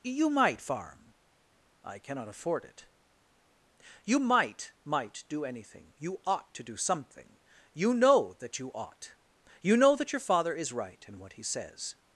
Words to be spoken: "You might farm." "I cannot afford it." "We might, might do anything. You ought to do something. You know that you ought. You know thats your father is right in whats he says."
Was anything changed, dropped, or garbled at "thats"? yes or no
yes